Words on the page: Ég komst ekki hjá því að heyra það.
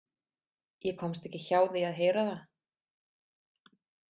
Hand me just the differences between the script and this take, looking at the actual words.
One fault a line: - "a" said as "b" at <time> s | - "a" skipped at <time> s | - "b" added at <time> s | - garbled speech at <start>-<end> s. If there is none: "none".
none